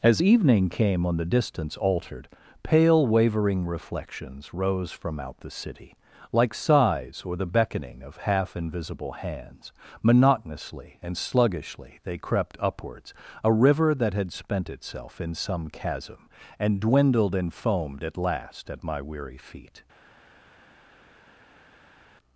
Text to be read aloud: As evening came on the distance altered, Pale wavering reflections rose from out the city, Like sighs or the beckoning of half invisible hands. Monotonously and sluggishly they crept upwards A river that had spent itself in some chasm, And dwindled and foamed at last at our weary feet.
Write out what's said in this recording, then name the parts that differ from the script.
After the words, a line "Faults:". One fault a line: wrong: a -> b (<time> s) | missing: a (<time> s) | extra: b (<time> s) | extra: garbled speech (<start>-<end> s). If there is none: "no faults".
As evening came on the distance altered, Pale wavering reflections rose from out the city, Like sighs or the beckoning of half invisible hands. Monotonously and sluggishly they crept upwards A river that had spent itself in some chasm, And dwindled and foamed at last at my weary feet.
Faults:
wrong: our -> my (18.8 s)